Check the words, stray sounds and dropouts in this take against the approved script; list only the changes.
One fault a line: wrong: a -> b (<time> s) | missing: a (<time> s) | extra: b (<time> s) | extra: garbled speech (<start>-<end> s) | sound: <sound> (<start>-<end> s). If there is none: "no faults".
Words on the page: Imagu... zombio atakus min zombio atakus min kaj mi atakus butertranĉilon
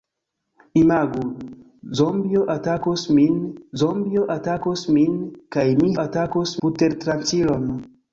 no faults